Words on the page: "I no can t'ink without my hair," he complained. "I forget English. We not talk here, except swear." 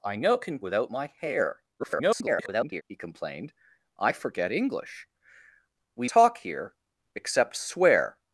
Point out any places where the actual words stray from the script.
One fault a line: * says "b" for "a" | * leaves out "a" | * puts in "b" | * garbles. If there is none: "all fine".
* leaves out "t'ink"
* garbles
* leaves out "not"